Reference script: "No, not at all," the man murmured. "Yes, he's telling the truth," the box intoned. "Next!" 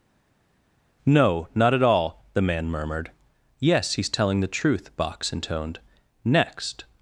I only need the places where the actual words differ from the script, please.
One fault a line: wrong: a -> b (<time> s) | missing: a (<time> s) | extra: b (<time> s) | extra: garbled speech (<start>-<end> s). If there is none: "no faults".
missing: the (5.0 s)